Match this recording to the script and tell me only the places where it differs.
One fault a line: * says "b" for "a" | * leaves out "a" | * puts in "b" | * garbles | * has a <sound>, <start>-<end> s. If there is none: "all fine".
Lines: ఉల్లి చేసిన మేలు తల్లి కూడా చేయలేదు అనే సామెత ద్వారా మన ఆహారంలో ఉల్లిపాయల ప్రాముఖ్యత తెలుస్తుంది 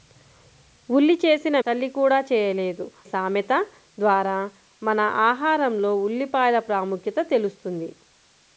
* leaves out "మేలు"
* leaves out "అనే"